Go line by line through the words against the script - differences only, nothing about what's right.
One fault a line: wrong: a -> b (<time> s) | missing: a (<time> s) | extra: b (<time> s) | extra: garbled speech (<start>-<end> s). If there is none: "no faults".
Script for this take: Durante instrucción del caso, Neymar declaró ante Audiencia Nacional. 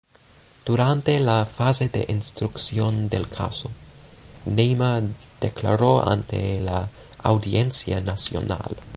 extra: la fase de (1.2 s)
extra: la (6.6 s)